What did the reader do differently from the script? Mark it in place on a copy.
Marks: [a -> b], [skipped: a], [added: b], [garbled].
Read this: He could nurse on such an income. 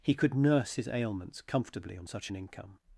He could nurse [added: his ailments comfortably] on such an income.